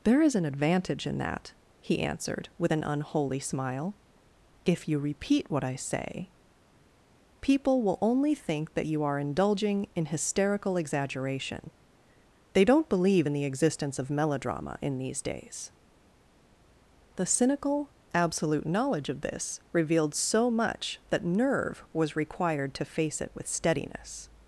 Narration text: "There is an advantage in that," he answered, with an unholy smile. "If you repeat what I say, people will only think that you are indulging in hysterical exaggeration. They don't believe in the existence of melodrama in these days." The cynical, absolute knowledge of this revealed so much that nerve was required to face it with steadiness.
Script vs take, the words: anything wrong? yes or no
no